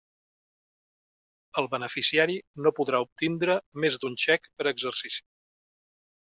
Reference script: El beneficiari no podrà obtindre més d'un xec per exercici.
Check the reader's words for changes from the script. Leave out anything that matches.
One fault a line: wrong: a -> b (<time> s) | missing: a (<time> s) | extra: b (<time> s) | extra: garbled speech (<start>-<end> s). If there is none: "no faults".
no faults